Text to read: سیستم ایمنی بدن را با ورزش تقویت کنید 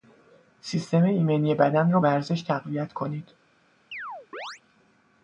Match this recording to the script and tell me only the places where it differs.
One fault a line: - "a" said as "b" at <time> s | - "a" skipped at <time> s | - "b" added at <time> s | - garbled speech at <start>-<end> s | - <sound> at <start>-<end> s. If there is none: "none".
- "با" skipped at 2.0 s
- chirp at 3.9-4.6 s